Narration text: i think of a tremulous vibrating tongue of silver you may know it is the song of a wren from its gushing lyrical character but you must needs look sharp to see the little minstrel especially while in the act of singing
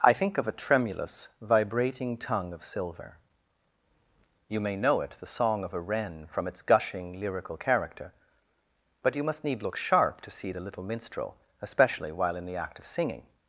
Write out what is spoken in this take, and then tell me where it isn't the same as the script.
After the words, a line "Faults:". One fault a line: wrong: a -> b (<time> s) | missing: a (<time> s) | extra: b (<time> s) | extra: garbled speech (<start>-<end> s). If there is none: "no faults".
i think of a tremulous vibrating tongue of silver you may know it the song of a wren from its gushing lyrical character but you must need look sharp to see the little minstrel especially while in the act of singing
Faults:
missing: is (5.2 s)
wrong: needs -> need (9.4 s)